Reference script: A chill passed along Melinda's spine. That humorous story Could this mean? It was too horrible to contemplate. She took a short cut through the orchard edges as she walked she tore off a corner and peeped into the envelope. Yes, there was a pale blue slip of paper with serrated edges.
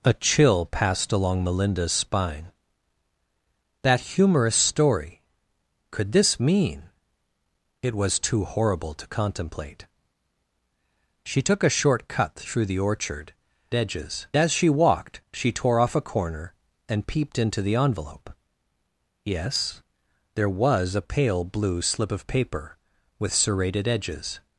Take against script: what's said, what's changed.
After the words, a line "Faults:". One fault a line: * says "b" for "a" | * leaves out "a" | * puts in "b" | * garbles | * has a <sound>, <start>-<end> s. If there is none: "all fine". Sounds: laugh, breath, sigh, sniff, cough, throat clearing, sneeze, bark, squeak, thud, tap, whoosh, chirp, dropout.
A chill passed along Melinda's spine. That humorous story Could this mean? It was too horrible to contemplate. She took a short cut through the orchard edges as she walked she tore off a corner and peeped into the envelope. Yes, there was a pale blue slip of paper with serrated edges.
Faults:
all fine